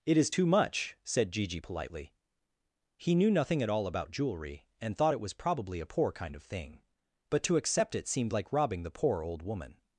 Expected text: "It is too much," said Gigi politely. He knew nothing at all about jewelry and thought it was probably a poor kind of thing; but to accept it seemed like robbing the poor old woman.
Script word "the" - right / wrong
right